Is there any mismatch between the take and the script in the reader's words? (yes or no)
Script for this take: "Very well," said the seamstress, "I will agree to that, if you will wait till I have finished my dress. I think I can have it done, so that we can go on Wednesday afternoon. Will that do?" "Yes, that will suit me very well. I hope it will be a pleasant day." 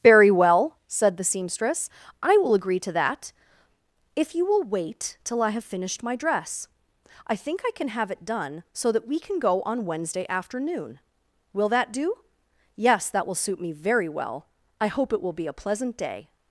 no